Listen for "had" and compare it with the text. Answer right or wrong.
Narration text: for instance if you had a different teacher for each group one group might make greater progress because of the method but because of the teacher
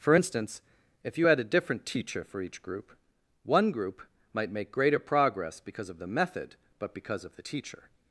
right